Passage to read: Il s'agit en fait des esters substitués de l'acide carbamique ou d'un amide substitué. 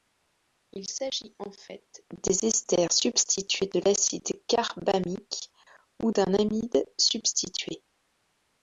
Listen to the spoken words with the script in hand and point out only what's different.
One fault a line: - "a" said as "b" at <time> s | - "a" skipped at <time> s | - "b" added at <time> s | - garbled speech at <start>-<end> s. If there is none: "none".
none